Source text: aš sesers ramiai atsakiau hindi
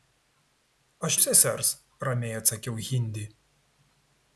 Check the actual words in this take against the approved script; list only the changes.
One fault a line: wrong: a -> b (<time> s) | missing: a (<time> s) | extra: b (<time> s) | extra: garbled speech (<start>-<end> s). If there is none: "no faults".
no faults